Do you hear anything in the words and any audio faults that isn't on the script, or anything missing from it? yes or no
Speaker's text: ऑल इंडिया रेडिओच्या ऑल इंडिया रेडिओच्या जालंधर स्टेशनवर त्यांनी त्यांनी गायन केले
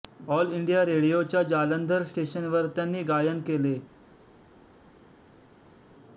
yes